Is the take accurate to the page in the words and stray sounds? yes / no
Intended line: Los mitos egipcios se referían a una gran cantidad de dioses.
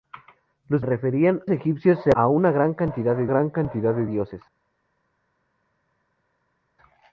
no